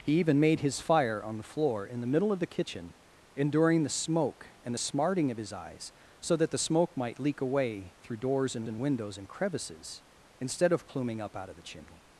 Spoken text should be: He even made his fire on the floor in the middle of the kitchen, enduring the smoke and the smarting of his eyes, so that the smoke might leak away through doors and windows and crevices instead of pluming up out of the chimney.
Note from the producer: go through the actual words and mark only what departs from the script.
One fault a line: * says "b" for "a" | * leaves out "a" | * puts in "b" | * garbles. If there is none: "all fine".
* puts in "and"